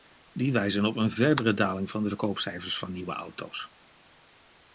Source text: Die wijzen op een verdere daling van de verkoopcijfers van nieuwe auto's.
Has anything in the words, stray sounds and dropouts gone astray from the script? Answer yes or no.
no